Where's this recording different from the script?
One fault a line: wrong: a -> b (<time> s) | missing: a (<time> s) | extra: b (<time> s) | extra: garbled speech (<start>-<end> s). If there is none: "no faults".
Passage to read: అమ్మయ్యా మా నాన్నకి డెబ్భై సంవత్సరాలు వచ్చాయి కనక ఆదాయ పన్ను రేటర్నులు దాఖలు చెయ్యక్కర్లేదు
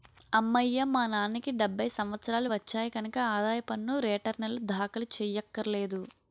no faults